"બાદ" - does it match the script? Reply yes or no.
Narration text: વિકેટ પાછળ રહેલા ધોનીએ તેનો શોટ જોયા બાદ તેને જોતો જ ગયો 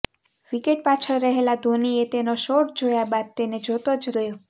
yes